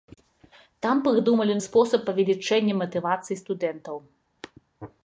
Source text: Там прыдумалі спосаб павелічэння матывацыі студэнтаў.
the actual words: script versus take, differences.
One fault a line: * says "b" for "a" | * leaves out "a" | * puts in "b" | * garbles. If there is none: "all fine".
all fine